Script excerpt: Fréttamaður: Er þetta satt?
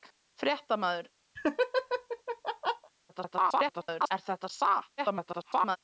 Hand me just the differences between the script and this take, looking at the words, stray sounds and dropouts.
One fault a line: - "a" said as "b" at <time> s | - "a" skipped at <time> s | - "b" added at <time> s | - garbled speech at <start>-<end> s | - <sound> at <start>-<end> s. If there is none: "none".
- laugh at 1.4-2.9 s
- garbled speech at 3.1-4.1 s
- garbled speech at 5.0-5.8 s